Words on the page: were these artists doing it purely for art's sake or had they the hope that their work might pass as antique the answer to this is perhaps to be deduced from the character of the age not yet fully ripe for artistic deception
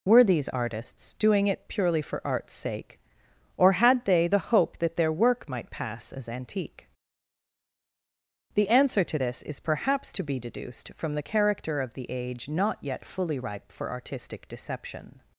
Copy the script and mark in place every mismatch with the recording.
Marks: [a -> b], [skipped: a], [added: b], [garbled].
were these artists doing it purely for art's sake or had they the hope that their work might pass as antique the answer to this is perhaps to be deduced from the character of the age not yet fully ripe for artistic deception